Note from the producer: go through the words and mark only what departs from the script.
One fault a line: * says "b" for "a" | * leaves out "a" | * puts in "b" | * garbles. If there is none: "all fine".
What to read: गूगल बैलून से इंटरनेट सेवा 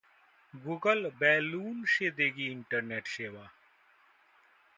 * puts in "देगी"